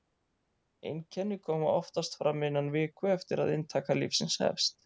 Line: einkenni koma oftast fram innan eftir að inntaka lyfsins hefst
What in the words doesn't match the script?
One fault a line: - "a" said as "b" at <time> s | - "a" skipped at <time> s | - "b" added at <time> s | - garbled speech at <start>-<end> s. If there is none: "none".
- "viku" added at 2.8 s